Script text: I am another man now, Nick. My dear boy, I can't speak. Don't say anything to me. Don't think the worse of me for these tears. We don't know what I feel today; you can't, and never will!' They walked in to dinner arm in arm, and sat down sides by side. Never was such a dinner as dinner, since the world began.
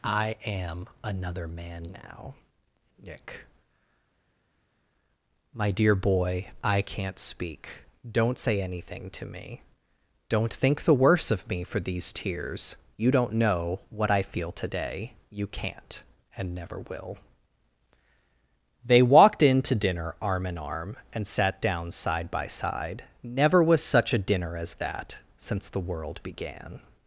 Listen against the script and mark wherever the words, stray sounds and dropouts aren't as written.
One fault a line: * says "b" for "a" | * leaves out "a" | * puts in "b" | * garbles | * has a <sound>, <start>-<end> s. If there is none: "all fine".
* says "You" for "We"
* says "side" for "sides"
* says "that" for "dinner"